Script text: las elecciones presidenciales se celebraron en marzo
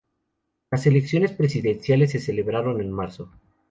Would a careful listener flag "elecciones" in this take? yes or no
no